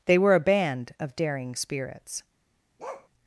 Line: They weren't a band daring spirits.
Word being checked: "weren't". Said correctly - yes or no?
no